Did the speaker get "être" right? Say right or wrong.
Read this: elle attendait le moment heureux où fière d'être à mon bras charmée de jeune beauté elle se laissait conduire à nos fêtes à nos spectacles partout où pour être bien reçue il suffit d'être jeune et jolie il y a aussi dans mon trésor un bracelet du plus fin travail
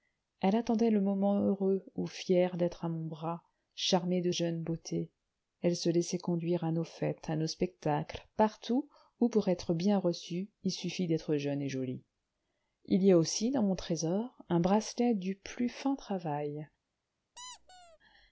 right